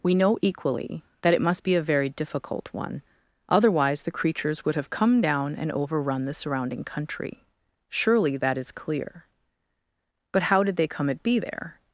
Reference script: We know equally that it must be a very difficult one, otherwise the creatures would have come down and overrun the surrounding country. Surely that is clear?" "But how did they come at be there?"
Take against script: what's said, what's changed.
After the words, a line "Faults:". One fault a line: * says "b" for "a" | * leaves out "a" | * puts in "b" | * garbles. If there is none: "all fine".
We know equally that it must be a very difficult one, otherwise the creatures would have come down and overrun the surrounding country. Surely that is clear?" "But how did they come at be there?"
Faults:
all fine